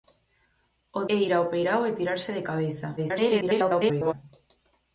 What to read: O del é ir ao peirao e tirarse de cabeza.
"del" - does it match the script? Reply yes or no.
no